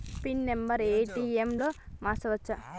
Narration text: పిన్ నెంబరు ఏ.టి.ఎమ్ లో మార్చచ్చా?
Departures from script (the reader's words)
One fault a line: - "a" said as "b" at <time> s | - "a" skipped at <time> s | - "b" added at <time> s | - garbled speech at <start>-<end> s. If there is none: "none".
none